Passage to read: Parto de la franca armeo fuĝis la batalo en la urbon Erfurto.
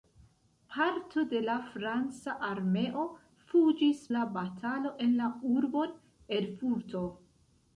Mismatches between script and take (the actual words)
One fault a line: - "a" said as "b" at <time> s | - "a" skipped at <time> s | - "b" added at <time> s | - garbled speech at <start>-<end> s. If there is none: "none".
none